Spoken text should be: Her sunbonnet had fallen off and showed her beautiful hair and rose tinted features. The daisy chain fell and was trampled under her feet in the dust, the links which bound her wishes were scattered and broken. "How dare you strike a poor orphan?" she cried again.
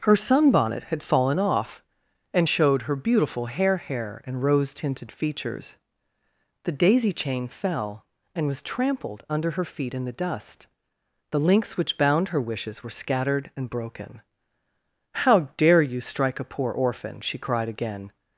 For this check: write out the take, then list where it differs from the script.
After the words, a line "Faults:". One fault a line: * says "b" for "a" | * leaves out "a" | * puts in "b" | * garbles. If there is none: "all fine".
Her sunbonnet had fallen off and showed her beautiful hair hair and rose tinted features. The daisy chain fell and was trampled under her feet in the dust, the links which bound her wishes were scattered and broken. "How dare you strike a poor orphan?" she cried again.
Faults:
* puts in "hair"